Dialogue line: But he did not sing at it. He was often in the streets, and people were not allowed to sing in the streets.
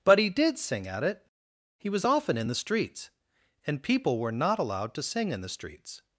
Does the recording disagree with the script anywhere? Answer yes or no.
yes